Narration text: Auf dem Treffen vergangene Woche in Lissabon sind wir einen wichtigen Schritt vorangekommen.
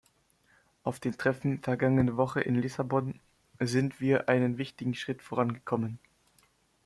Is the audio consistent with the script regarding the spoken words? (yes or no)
yes